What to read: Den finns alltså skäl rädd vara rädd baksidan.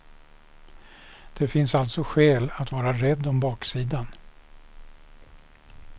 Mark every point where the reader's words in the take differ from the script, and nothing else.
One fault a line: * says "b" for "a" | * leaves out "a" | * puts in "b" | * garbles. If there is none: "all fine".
* says "Det" for "Den"
* says "att" for "rädd"
* puts in "om"